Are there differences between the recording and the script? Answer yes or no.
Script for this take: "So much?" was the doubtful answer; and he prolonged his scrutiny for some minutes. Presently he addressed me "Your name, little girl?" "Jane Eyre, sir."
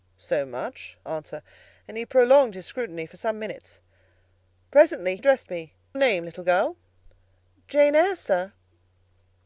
yes